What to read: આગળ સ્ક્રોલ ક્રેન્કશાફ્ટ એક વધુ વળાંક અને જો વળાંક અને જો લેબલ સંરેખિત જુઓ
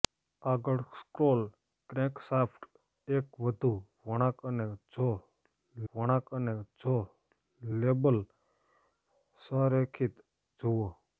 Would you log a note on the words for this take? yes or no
no